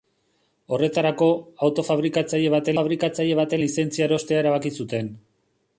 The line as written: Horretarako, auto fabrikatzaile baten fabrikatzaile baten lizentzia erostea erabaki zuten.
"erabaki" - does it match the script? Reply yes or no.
yes